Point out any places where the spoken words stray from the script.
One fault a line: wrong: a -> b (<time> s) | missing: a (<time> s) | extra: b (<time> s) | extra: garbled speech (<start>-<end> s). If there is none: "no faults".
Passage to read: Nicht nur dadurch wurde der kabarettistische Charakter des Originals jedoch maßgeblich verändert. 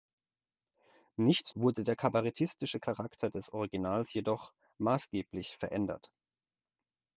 missing: nur dadurch (1.6 s)